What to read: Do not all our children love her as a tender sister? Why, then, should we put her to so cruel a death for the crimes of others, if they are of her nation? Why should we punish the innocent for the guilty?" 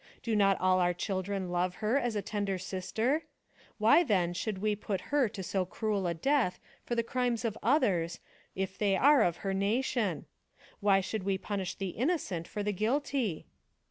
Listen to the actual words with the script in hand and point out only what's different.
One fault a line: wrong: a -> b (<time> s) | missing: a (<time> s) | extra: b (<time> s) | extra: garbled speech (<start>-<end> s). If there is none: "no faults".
no faults